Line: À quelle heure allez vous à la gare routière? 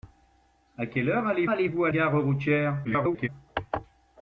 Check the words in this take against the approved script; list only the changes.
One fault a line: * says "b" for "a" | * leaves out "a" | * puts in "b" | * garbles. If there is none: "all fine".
* puts in "allez"
* leaves out "la"
* garbles